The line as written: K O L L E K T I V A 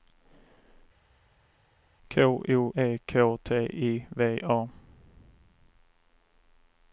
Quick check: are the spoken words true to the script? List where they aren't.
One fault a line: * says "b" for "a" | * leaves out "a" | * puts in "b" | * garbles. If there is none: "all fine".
* leaves out "L L"